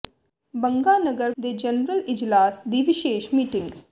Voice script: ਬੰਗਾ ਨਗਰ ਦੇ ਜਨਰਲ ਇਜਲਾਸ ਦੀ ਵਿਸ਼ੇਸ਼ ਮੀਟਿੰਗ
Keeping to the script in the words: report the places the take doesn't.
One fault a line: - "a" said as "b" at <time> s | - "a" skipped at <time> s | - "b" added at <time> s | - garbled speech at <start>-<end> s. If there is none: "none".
none